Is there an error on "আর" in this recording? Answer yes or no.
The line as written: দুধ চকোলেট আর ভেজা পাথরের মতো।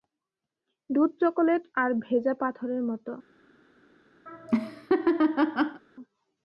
no